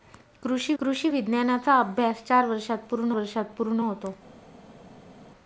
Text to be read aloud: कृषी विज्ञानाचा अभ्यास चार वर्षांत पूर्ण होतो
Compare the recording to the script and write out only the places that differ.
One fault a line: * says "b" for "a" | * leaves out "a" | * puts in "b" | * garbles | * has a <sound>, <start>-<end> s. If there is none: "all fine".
* puts in "कृषी"
* puts in "वर्षांत पूर्ण"